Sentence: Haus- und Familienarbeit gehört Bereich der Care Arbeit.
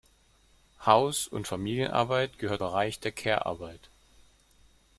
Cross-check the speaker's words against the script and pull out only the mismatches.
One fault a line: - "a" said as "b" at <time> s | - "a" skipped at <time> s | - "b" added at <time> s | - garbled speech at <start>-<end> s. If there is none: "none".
none